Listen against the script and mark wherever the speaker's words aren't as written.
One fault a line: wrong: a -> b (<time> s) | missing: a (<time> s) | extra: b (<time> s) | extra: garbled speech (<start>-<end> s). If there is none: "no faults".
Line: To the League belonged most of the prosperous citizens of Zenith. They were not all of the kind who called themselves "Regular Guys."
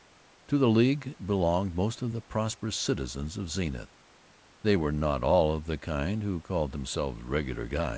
no faults